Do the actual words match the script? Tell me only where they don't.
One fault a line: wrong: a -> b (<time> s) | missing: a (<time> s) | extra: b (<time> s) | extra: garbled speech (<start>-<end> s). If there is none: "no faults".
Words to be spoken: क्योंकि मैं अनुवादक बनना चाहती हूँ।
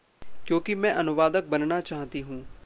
no faults